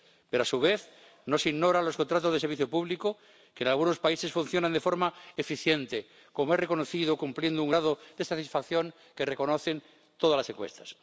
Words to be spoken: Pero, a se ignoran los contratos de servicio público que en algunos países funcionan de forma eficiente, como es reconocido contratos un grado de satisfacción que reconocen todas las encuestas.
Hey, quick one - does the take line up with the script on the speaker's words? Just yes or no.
no